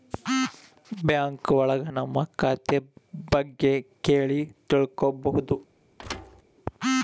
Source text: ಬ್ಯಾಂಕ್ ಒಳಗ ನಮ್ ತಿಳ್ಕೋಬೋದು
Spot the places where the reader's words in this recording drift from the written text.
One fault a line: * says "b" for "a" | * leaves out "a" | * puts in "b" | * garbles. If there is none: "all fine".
* puts in "ಖಾತೆ ಬಗ್ಗೆ ಕೇಳಿ"